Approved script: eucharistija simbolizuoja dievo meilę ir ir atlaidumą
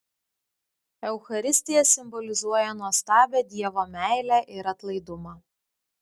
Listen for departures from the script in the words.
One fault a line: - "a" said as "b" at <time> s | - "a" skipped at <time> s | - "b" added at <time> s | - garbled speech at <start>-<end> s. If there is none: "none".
- "nuostabią" added at 2.8 s
- "ir" skipped at 4.7 s